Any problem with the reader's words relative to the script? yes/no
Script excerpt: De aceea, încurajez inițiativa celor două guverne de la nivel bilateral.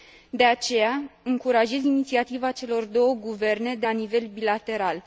no